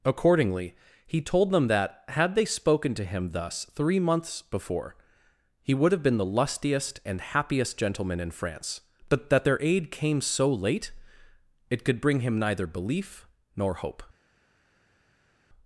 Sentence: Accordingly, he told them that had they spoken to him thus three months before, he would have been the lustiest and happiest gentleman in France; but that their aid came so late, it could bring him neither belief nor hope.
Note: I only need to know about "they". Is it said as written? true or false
true